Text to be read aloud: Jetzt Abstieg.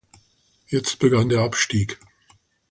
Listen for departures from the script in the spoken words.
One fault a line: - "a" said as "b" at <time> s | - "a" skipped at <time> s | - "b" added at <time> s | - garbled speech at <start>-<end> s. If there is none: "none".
- "begann der" added at 1.0 s